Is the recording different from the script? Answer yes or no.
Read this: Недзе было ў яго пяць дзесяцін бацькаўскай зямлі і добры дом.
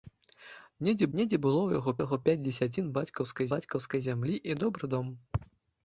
yes